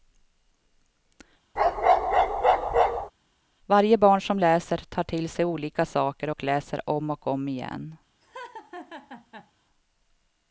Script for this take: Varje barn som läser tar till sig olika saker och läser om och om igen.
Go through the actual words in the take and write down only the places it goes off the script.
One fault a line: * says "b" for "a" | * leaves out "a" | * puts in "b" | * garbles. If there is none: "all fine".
all fine